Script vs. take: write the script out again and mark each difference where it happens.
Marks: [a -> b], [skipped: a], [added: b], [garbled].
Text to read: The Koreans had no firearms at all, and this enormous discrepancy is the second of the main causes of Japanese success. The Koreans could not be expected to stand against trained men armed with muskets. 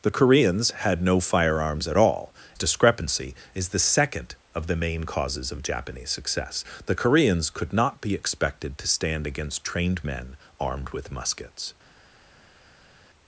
The Koreans had no firearms at all, [skipped: and this enormous] discrepancy is the second of the main causes of Japanese success. The Koreans could not be expected to stand against trained men armed with muskets.